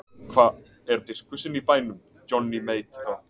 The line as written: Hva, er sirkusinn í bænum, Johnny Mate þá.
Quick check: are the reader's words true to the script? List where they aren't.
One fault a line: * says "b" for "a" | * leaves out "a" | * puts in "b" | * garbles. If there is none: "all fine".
all fine